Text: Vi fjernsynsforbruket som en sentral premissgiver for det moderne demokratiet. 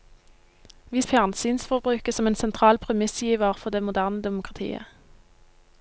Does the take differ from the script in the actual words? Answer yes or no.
no